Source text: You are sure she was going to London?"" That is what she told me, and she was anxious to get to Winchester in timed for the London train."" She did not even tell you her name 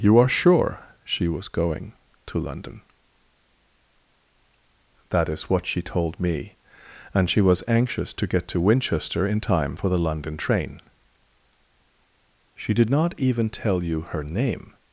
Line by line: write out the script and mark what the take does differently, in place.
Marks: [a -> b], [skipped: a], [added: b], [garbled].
You are sure she was going to London?"" That is what she told me, and she was anxious to get to Winchester in [timed -> time] for the London train."" She did not even tell you her name